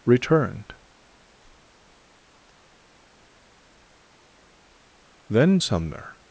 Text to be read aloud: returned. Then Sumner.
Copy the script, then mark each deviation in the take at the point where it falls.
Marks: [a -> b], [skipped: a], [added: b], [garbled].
returned. Then Sumner.